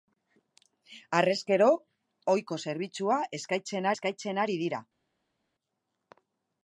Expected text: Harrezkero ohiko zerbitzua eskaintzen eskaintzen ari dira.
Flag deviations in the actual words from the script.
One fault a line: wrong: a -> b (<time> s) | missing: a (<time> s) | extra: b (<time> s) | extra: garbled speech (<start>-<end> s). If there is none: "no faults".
no faults